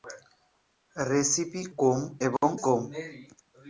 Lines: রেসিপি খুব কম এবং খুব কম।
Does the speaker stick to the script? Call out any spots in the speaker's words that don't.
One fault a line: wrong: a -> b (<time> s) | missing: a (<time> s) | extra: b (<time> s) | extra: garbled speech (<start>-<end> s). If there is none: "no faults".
missing: খুব (1.6 s)
missing: খুব (2.5 s)